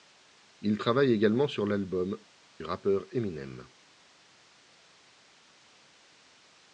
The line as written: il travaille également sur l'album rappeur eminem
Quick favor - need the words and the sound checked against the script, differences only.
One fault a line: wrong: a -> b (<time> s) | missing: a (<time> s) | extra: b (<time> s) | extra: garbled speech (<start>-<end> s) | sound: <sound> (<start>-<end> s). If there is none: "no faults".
no faults